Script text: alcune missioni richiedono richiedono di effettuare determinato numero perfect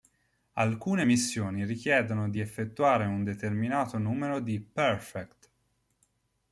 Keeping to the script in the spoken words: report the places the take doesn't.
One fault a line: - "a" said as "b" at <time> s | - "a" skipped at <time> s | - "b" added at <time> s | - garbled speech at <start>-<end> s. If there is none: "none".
- "richiedono" skipped at 2.3 s
- "un" added at 3.1 s
- "di" added at 4.4 s